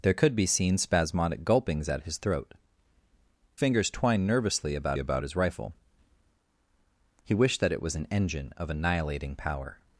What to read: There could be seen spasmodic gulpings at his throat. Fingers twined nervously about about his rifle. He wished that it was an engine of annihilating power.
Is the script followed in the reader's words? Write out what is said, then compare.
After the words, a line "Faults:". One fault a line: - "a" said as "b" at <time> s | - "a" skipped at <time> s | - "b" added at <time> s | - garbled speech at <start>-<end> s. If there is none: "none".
There could be seen spasmodic gulpings at his throat. Fingers twined nervously about about his rifle. He wished that it was an engine of annihilating power.
Faults:
none